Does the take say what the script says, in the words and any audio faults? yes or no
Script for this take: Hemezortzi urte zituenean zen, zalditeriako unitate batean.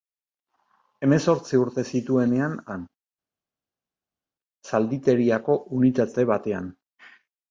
yes